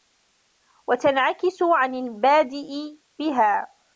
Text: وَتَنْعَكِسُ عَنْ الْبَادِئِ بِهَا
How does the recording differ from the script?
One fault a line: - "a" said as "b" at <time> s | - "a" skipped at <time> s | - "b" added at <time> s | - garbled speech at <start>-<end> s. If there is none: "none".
none